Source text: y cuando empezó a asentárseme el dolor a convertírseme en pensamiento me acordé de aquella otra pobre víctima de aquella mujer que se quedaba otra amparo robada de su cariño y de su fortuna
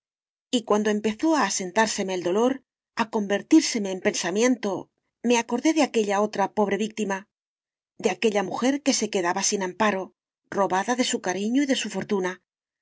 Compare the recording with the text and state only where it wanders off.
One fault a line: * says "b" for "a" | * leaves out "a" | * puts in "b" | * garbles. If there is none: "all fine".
* says "sin" for "otra"